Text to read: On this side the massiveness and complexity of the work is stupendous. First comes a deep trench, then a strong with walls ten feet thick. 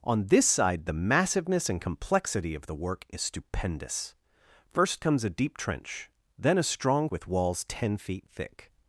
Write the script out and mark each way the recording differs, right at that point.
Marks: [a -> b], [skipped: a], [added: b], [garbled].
On this side the massiveness and complexity of the work is stupendous. First comes a deep trench, then a strong with walls ten feet thick.